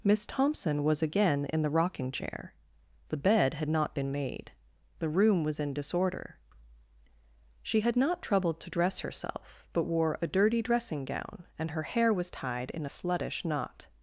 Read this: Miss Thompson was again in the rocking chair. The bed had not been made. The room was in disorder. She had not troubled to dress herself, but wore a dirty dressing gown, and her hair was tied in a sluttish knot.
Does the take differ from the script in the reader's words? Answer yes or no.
no